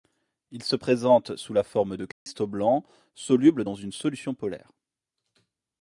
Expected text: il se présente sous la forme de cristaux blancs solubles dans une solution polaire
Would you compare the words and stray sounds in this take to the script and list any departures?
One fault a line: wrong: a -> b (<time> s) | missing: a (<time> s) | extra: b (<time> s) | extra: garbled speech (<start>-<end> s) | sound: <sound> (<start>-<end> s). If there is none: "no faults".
sound: dropout (2.1-2.3 s)